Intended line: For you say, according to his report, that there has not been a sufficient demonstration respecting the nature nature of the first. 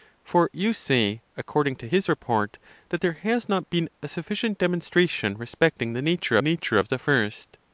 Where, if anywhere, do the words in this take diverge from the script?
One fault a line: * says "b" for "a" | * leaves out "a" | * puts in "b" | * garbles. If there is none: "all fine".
all fine